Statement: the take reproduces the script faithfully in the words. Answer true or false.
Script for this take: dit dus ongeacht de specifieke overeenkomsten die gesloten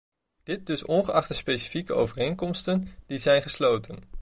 false